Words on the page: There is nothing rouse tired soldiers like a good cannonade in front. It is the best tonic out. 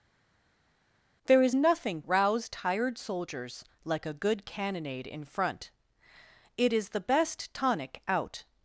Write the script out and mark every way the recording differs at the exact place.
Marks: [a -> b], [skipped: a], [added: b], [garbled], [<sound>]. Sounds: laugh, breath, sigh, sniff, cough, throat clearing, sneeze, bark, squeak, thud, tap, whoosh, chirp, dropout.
There is nothing rouse tired soldiers like a good cannonade in front. It is the best tonic out.